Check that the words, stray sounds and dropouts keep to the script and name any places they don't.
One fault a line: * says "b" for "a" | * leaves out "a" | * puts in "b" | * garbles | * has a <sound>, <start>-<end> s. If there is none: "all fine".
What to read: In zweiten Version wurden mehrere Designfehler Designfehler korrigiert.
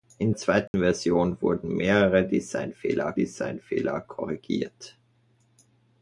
* has a dropout, 0.7-0.7 s